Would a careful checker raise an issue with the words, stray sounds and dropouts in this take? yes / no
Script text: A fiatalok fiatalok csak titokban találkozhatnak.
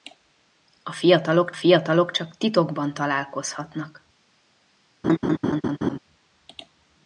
yes